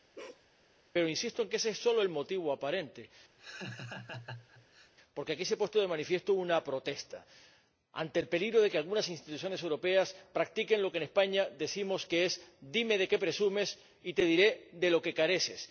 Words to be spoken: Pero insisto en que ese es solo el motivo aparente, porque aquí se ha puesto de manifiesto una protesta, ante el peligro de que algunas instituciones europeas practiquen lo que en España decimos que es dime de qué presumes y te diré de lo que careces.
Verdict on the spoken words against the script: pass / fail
pass